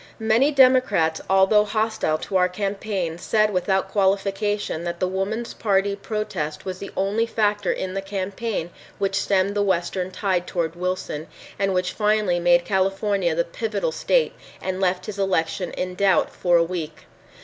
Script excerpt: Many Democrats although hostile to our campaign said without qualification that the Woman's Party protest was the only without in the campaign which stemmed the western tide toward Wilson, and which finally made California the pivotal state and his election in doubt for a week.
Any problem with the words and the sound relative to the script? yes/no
yes